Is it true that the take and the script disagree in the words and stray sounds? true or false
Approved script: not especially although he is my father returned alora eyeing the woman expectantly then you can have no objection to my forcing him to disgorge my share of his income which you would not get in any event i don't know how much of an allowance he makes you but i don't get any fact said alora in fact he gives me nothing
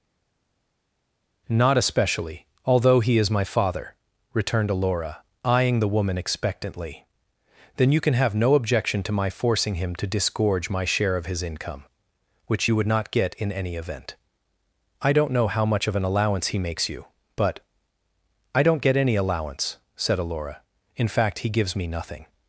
true